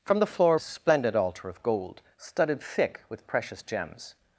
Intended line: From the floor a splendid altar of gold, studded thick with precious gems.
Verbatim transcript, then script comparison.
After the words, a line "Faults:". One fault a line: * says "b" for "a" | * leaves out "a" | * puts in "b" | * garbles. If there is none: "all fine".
From the floor a splendid altar of gold, studded thick with precious gems.
Faults:
all fine